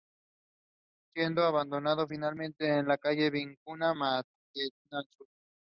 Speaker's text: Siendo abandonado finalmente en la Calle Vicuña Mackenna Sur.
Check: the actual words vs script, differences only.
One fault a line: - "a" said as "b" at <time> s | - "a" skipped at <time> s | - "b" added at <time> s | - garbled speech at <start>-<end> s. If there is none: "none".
none